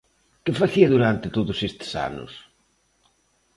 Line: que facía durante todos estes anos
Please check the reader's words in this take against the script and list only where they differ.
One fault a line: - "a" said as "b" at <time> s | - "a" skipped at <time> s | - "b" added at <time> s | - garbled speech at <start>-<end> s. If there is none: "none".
none